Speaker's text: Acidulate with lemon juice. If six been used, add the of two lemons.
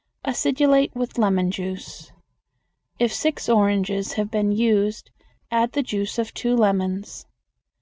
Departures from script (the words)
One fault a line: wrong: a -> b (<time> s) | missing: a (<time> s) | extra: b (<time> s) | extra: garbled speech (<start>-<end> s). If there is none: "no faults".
extra: oranges have (3.5 s)
extra: juice (5.8 s)